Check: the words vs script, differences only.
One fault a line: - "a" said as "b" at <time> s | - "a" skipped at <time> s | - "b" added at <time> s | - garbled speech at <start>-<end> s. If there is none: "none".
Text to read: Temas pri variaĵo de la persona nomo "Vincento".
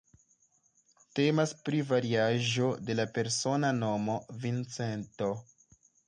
none